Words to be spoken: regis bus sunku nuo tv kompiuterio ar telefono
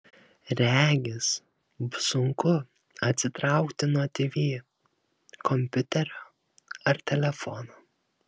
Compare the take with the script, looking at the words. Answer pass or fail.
fail